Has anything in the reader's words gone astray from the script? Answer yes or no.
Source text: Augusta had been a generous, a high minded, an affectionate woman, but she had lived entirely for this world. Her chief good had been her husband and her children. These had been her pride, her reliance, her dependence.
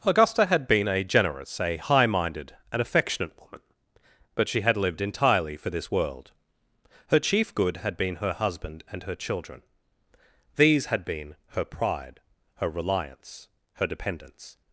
no